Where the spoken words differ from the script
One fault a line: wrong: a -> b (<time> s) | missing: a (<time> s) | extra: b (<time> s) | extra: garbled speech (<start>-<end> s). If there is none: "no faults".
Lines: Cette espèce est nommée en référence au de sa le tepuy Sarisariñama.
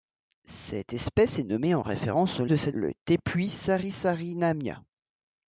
no faults